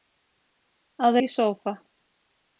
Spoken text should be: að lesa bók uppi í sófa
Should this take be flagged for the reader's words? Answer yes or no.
yes